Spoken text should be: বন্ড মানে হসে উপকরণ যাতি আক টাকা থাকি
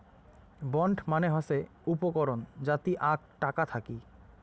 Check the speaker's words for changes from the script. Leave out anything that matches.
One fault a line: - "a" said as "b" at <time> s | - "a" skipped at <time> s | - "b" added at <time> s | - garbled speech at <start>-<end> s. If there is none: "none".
none